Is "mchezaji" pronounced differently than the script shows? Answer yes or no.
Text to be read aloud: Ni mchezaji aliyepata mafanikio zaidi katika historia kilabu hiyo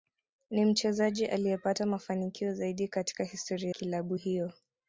no